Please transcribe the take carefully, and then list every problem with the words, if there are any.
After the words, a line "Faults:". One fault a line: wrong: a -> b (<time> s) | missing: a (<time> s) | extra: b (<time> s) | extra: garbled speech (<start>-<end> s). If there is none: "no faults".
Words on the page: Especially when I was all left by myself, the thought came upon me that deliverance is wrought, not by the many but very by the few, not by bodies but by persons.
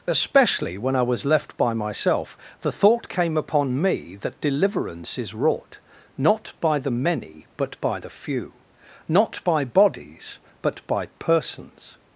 Especially when I was left by myself, the thought came upon me that deliverance is wrought, not by the many but by the few, not by bodies but by persons.
Faults:
missing: all (1.2 s)
missing: very (7.8 s)